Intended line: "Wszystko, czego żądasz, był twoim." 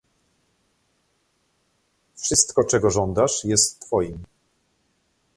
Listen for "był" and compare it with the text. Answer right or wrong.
wrong